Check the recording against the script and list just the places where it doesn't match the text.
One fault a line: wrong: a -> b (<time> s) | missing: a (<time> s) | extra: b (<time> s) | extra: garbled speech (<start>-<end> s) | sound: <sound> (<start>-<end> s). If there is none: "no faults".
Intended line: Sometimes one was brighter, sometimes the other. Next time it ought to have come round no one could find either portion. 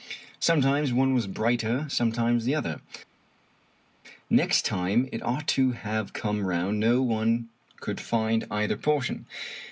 no faults